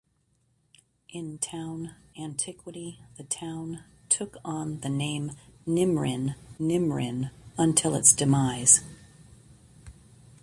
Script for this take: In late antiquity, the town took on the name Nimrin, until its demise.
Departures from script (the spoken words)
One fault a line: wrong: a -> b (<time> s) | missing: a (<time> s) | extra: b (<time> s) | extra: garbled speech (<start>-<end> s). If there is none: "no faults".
wrong: late -> town (1.3 s)
extra: Nimrin (6.6 s)